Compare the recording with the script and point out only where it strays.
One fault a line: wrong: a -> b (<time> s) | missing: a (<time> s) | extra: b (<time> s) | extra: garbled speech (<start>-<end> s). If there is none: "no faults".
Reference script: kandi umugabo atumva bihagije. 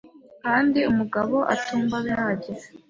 no faults